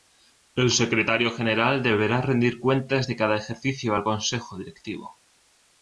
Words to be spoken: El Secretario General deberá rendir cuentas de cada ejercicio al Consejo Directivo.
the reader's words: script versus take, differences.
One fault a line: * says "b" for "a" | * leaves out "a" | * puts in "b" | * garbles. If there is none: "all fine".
all fine